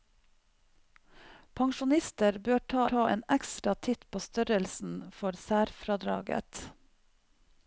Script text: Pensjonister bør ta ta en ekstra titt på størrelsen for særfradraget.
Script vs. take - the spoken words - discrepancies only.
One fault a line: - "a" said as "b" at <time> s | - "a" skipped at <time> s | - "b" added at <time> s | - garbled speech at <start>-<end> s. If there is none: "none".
none